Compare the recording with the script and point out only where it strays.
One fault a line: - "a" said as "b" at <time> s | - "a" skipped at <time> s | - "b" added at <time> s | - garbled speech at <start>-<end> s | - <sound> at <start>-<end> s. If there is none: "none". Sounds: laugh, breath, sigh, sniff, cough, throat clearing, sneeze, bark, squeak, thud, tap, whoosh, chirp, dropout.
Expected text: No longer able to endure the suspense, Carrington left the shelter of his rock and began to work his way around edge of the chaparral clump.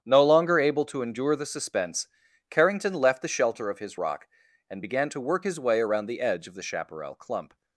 - "the" added at 6.1 s